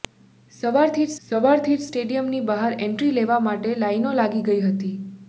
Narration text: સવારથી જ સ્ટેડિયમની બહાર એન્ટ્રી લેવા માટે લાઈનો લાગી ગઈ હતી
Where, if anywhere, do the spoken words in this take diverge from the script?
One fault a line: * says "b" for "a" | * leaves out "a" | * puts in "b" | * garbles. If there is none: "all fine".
* puts in "સવારથી જ"